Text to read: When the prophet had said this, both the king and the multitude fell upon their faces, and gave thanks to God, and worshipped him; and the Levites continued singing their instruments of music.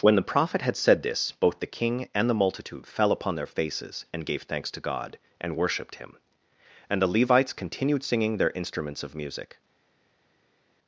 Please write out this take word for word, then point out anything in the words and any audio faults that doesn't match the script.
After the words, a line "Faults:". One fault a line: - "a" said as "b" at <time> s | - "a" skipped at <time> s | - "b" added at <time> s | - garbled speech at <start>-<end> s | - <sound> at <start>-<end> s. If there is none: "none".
When the prophet had said this, both the king and the multitude fell upon their faces, and gave thanks to God, and worshipped him; and the Levites continued singing their instruments of music.
Faults:
none